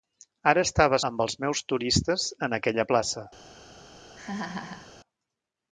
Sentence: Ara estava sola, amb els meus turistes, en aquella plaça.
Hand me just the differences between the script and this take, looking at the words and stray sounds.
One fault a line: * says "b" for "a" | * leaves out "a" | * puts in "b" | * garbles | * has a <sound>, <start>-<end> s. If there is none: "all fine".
* leaves out "sola"
* has a laugh, 4.2-5.0 s